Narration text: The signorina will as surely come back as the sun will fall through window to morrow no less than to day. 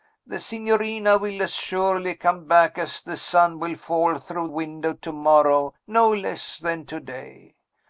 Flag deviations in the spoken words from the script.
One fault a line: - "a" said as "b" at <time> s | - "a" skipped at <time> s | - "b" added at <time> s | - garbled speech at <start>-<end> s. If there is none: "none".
none